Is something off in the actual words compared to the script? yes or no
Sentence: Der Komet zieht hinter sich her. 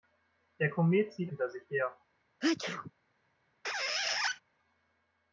no